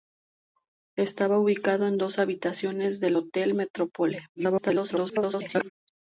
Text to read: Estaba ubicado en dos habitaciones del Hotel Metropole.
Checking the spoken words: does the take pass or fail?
fail